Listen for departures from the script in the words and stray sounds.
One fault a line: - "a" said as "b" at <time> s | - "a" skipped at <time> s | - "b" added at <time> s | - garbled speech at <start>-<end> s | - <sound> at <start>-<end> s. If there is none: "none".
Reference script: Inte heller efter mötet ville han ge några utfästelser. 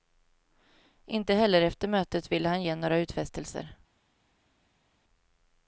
none